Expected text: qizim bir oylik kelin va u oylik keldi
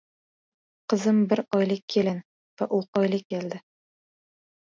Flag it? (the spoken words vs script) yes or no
no